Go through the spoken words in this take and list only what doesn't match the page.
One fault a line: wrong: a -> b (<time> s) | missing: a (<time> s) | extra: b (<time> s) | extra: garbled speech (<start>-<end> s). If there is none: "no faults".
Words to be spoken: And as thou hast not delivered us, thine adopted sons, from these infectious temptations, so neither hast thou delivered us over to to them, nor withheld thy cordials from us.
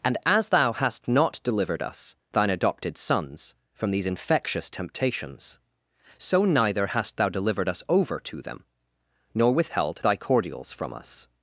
missing: to (8.4 s)